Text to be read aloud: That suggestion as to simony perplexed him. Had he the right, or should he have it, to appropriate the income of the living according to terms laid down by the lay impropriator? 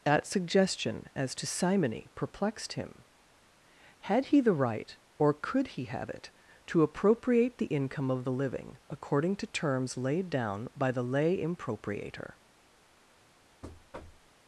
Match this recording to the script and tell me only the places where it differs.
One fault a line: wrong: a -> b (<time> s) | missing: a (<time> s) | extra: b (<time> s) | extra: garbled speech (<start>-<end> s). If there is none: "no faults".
wrong: should -> could (5.3 s)